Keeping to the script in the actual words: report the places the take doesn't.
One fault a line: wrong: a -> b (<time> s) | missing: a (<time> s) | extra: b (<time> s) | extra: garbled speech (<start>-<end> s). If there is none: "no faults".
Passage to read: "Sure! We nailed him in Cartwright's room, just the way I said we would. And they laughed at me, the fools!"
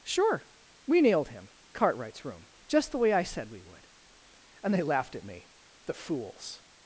missing: in (1.5 s)